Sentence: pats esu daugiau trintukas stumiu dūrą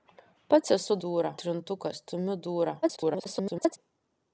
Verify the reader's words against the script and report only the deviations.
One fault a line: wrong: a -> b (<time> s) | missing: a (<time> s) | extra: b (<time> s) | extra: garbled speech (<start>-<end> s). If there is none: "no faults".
wrong: daugiau -> dūrą (1.1 s)
extra: garbled speech (2.8-3.8 s)